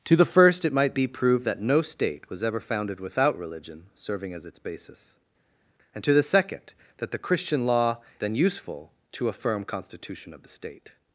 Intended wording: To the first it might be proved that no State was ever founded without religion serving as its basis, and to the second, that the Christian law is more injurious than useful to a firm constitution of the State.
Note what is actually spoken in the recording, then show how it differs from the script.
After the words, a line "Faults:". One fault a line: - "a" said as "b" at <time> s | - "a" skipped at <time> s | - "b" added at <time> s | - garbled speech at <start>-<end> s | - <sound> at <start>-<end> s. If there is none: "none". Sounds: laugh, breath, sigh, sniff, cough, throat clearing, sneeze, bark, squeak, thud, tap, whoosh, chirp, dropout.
To the first it might be proved that no State was ever founded without religion serving as its basis, and to the second, that the Christian law than useful to a firm constitution of the State.
Faults:
- "is more injurious" skipped at 8.0 s